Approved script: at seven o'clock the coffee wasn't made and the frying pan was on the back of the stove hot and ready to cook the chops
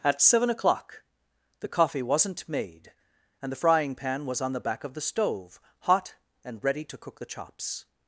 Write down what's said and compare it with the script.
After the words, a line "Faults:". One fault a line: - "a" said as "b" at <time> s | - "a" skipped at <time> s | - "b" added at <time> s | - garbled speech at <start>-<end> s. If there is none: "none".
at seven o'clock the coffee wasn't made and the frying pan was on the back of the stove hot and ready to cook the chops
Faults:
none